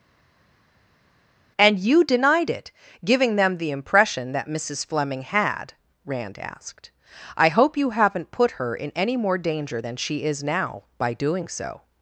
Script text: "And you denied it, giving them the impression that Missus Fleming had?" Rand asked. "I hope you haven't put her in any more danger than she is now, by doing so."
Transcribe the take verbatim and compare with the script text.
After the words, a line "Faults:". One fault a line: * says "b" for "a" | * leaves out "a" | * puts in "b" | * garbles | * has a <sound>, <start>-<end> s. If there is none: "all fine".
"And you denied it, giving them the impression that Missus Fleming had?" Rand asked. "I hope you haven't put her in any more danger than she is now, by doing so."
Faults:
all fine